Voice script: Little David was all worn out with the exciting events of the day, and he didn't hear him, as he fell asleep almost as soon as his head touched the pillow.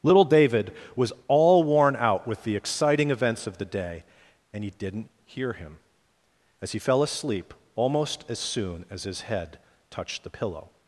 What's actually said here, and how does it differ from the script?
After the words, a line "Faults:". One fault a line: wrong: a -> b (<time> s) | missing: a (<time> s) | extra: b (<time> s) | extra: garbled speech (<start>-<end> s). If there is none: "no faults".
Little David was all worn out with the exciting events of the day, and he didn't hear him, as he fell asleep almost as soon as his head touched the pillow.
Faults:
no faults